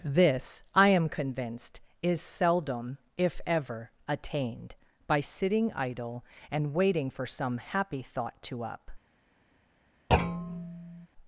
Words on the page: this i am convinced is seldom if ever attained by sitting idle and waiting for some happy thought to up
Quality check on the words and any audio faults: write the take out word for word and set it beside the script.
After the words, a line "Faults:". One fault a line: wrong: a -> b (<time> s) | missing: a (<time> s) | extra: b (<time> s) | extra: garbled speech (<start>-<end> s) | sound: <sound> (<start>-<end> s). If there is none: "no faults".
this i am convinced is seldom if ever attained by sitting idle and waiting for some happy thought to up
Faults:
sound: thud (10.1-11.1 s)